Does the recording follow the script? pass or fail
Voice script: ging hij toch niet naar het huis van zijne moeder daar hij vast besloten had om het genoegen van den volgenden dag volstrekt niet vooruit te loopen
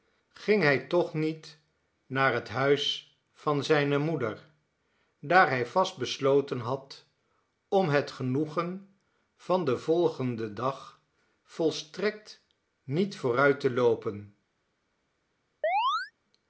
pass